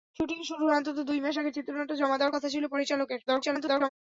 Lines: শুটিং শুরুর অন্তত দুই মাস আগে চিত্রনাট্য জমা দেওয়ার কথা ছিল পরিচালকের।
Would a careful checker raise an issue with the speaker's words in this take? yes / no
yes